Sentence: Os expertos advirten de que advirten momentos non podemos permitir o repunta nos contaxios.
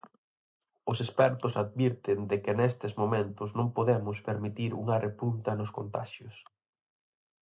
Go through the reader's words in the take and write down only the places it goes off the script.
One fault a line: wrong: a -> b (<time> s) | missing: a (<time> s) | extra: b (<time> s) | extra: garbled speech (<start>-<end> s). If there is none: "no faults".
wrong: advirten -> nestes (2.6 s)
wrong: o -> unha (4.8 s)